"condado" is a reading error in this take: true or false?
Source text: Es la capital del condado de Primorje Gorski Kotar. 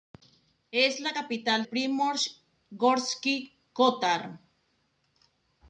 true